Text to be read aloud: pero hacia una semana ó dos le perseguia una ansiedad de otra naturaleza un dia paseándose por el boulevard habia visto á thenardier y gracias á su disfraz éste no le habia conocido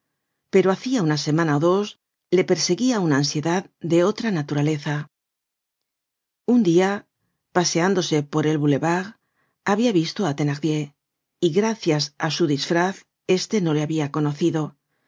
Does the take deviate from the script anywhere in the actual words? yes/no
no